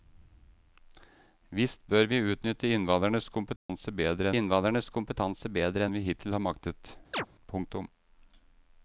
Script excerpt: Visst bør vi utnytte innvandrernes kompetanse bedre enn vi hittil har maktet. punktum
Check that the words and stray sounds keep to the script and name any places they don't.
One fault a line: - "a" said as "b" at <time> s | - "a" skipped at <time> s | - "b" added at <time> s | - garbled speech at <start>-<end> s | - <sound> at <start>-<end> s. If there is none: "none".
- dropout at 3.6-3.7 s
- "innvandrernes kompetanse bedre" added at 4.4 s
- chirp at 7.1-7.3 s